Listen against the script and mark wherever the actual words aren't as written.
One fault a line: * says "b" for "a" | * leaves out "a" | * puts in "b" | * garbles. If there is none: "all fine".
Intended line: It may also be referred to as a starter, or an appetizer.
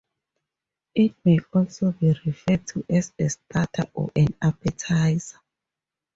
all fine